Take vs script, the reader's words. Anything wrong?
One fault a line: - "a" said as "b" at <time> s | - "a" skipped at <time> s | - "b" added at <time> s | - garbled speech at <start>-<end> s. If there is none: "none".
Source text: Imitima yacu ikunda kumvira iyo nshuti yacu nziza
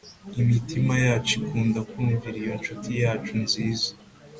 none